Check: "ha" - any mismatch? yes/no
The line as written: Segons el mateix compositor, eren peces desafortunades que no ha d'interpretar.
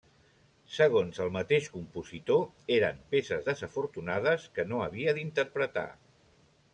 yes